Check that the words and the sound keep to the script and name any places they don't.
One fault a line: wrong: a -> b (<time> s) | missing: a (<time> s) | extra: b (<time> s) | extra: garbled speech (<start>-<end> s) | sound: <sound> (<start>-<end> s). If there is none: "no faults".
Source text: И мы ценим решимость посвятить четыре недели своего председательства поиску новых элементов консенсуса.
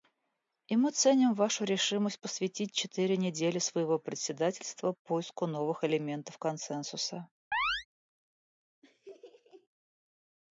extra: вашу (1.4 s)
sound: chirp (7.5-7.9 s)
sound: laugh (8.8-9.7 s)